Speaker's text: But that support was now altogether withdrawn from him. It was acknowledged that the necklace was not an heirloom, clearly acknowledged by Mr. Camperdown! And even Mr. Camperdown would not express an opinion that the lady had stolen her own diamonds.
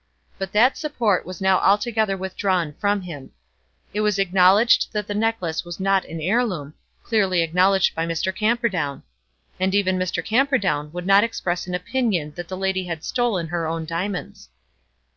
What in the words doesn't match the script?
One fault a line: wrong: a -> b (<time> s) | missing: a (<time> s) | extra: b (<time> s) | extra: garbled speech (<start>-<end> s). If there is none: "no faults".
no faults